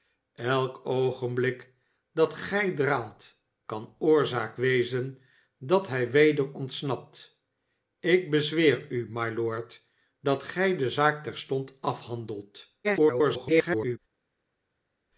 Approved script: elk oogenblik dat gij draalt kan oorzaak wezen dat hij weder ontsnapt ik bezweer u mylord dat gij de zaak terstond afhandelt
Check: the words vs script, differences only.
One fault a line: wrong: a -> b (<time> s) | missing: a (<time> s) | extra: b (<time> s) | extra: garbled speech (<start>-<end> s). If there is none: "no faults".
extra: garbled speech (12.8-14.0 s)